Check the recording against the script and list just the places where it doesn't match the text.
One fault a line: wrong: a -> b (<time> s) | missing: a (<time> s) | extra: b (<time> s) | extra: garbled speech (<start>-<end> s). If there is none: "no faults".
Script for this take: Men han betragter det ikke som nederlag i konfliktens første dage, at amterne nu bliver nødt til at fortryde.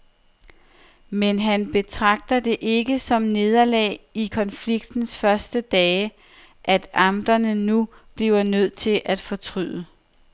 no faults